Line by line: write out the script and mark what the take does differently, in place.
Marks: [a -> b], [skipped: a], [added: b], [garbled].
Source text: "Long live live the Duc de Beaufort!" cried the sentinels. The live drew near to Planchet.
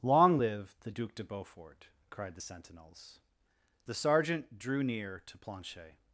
"Long live [skipped: live] the Duc de Beaufort!" cried the sentinels. The [live -> sergeant] drew near to Planchet.